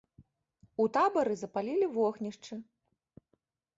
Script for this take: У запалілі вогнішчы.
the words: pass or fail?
fail